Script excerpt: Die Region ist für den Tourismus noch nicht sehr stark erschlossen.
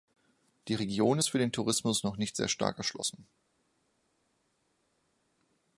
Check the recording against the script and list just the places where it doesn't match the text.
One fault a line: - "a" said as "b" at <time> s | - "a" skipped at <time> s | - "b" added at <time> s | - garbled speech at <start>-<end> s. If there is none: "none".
none